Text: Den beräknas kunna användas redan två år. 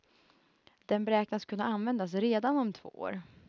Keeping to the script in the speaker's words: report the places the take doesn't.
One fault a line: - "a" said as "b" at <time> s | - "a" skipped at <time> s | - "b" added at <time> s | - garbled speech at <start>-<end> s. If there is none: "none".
- "om" added at 2.6 s